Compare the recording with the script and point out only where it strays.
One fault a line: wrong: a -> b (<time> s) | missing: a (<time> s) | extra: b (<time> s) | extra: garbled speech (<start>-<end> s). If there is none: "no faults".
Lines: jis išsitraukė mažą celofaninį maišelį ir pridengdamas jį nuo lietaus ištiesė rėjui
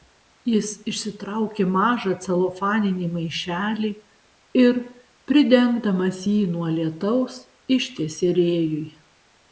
no faults